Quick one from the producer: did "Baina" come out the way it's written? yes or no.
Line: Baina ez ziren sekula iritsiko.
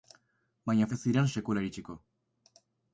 yes